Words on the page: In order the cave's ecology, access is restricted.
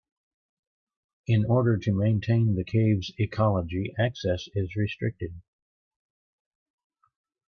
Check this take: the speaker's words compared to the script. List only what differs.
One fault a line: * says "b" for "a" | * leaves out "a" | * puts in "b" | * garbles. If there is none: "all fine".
* puts in "to maintain"